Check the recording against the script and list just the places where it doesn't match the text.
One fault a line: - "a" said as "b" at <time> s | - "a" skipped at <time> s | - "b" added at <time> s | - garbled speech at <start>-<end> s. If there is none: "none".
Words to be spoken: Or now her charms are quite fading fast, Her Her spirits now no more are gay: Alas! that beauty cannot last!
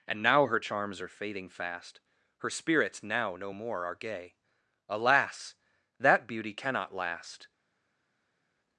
- "Or" said as "And" at 0.1 s
- "quite" skipped at 1.1 s
- "Her" skipped at 2.5 s